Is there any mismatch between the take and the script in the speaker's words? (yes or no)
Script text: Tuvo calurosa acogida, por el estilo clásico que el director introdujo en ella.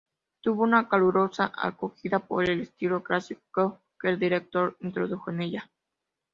yes